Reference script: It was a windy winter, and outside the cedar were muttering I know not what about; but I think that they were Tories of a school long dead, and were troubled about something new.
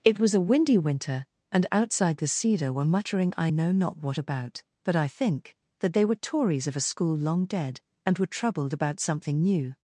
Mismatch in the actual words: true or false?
false